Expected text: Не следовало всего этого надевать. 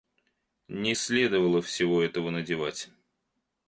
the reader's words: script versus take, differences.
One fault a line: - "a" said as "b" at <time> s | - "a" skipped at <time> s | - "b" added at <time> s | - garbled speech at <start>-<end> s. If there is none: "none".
none